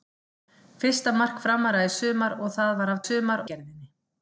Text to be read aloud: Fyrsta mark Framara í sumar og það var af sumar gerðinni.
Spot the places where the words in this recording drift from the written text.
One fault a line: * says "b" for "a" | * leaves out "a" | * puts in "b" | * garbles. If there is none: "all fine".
all fine